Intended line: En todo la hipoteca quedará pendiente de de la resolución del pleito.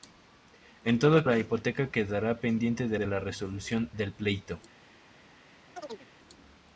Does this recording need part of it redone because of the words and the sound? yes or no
yes